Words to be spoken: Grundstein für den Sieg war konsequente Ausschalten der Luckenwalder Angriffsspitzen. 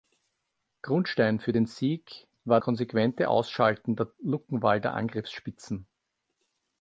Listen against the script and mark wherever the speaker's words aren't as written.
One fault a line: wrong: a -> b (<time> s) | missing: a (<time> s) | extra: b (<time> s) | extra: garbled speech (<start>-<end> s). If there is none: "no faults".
no faults